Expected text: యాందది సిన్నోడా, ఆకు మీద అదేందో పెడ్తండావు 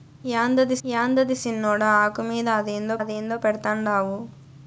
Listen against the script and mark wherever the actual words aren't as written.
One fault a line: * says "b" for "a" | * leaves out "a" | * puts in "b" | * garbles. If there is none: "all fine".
* puts in "యాందది"
* puts in "అదేందో"